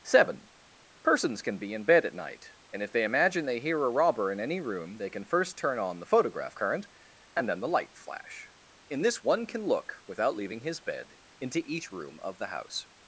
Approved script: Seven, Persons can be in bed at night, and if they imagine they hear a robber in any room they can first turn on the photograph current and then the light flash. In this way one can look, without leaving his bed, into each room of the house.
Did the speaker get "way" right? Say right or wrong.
wrong